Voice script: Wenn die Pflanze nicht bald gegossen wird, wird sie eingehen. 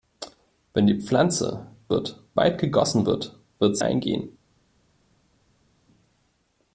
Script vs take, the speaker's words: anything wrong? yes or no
yes